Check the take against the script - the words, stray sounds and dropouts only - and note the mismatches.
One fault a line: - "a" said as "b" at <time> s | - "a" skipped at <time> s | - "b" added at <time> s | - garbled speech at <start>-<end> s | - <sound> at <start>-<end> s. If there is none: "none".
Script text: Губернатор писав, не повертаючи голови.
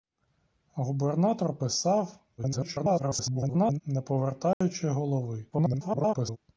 - garbled speech at 2.4-3.8 s
- dropout at 4.5-4.6 s
- garbled speech at 5.5-6.4 s